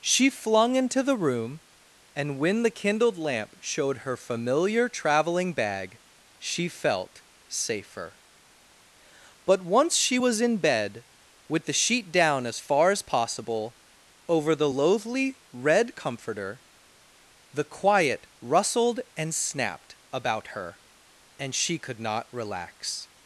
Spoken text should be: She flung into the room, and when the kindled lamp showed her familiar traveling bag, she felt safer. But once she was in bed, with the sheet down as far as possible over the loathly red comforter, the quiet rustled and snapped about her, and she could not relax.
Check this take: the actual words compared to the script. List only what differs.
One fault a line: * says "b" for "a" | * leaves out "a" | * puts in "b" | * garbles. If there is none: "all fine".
all fine